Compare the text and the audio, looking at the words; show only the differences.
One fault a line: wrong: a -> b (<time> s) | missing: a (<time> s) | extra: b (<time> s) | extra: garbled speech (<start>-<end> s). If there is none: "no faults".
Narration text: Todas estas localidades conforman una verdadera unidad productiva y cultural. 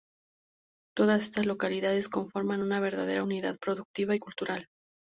no faults